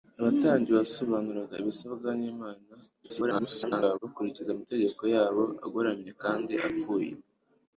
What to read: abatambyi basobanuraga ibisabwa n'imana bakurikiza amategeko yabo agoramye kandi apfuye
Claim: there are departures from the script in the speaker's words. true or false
true